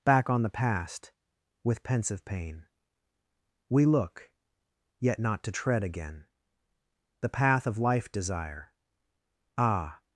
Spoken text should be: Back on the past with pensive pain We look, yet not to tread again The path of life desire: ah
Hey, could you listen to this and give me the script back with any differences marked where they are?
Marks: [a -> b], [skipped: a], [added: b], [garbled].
Back on the past with pensive pain We look, yet not to tread again The path of life desire: ah